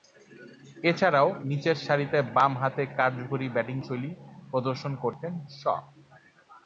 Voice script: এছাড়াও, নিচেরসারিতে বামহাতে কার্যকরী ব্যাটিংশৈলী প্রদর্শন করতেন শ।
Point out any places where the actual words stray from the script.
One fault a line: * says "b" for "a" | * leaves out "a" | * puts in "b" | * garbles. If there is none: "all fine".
all fine